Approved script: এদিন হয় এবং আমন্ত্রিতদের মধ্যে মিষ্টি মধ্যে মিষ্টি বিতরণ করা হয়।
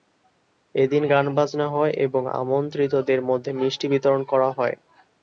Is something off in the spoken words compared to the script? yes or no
yes